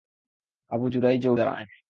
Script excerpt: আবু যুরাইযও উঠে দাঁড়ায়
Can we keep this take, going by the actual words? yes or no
no